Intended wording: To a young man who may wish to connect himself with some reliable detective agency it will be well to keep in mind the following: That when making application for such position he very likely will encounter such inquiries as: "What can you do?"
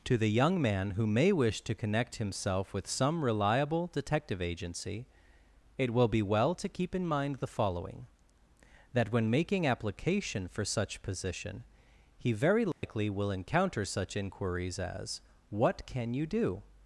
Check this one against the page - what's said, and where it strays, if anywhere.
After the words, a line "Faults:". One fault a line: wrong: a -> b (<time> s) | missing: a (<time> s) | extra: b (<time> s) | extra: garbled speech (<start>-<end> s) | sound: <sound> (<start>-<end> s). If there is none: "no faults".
To the young man who may wish to connect himself with some reliable detective agency it will be well to keep in mind the following: That when making application for such position he very likely will encounter such inquiries as: "What can you do?"
Faults:
wrong: a -> the (0.2 s)
sound: dropout (12.7-12.8 s)